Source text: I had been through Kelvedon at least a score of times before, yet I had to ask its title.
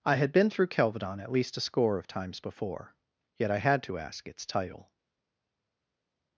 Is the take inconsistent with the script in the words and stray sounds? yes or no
no